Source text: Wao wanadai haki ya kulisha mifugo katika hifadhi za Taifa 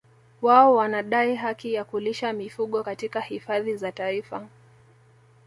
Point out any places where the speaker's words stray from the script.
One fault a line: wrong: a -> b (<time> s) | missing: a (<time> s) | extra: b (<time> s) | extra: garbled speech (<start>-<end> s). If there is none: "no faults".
no faults